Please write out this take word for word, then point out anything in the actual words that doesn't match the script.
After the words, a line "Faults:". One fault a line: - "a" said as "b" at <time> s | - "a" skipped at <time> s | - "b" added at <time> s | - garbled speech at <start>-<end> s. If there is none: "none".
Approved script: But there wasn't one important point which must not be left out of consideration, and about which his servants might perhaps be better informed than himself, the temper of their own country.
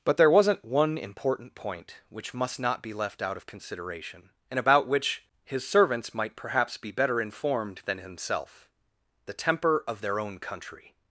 But there wasn't one important point which must not be left out of consideration, and about which his servants might perhaps be better informed than himself, the temper of their own country.
Faults:
none